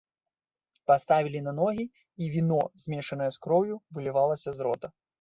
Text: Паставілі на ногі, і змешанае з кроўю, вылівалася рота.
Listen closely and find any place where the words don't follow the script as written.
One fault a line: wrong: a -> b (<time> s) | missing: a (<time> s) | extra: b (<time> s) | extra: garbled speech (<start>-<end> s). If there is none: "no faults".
extra: віно (2.4 s)
extra: з (4.6 s)